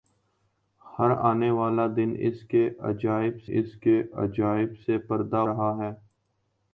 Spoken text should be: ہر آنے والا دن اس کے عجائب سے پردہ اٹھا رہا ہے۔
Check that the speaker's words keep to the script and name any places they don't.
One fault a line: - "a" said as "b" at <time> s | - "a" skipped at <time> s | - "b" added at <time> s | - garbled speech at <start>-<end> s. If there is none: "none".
- "اس کے عجائب" added at 3.5 s
- "اٹھا" skipped at 5.4 s